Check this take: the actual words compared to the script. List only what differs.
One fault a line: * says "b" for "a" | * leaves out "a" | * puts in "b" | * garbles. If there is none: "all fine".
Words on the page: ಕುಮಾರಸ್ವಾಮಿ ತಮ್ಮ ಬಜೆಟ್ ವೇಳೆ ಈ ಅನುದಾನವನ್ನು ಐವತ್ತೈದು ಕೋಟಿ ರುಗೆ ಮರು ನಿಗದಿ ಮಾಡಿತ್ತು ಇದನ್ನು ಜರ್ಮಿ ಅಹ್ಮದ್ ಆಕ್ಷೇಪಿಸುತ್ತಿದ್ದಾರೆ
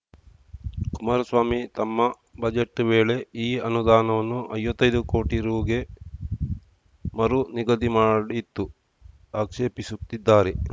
* leaves out "ಇದನ್ನು ಜರ್ಮಿ ಅಹ್ಮದ್"